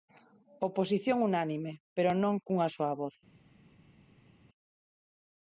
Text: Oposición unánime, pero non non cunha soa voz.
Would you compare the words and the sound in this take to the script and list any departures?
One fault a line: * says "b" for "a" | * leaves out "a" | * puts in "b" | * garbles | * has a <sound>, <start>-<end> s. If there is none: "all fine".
* leaves out "non"